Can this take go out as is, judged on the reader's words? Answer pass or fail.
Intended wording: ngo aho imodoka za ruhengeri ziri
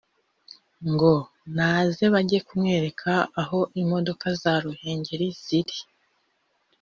fail